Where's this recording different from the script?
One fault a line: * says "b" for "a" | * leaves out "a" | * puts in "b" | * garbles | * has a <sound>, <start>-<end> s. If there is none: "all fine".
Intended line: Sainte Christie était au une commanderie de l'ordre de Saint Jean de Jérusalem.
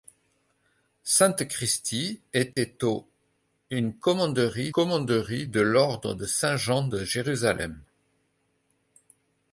* has a dropout, 2.5-2.6 s
* puts in "commanderie"